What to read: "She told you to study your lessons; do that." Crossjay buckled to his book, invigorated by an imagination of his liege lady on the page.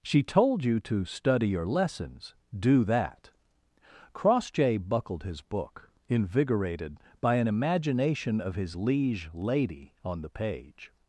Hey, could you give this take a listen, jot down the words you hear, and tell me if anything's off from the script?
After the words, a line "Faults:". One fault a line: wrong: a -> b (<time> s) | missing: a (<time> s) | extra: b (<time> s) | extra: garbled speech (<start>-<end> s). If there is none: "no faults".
"She told you to study your lessons; do that." Crossjay buckled his book, invigorated by an imagination of his liege lady on the page.
Faults:
missing: to (5.2 s)